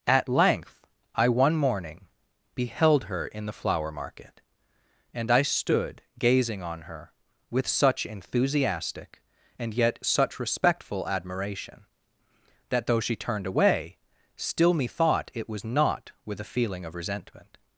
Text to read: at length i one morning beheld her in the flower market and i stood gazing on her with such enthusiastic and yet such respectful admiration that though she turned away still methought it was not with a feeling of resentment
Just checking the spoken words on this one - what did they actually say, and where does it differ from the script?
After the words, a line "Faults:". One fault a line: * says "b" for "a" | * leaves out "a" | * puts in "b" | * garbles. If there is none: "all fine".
at length i one morning beheld her in the flower market and i stood gazing on her with such enthusiastic and yet such respectful admiration that though she turned away still methought it was not with a feeling of resentment
Faults:
all fine